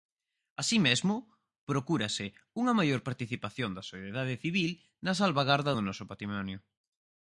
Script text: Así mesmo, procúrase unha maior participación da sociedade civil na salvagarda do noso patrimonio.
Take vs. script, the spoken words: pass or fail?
pass